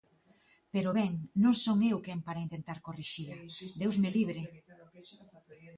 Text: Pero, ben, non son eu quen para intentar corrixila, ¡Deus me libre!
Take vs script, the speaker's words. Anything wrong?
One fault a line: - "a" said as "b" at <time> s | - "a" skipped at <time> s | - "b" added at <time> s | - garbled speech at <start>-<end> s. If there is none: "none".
none